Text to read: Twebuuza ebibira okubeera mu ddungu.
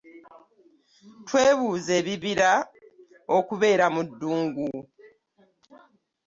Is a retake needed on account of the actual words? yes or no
no